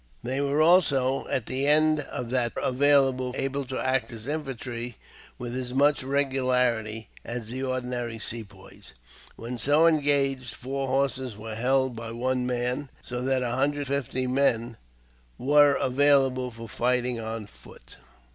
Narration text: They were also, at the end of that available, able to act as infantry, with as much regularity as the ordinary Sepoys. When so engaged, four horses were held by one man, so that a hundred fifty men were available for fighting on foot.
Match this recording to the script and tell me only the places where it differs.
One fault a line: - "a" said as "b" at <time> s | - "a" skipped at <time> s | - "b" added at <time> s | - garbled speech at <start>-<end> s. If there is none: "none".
none